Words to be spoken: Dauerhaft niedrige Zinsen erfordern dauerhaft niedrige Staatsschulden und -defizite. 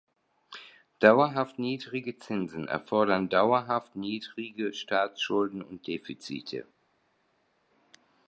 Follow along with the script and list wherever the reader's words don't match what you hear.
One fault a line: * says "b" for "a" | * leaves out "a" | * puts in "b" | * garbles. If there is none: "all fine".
all fine